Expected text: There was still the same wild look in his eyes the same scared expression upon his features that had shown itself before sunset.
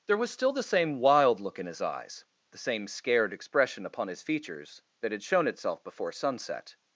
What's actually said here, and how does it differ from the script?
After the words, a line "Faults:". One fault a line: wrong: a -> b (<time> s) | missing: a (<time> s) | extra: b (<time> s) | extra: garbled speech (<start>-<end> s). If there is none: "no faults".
There was still the same wild look in his eyes the same scared expression upon his features that had shown itself before sunset.
Faults:
no faults